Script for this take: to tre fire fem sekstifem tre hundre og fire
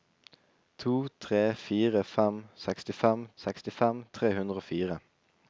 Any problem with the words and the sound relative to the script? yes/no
yes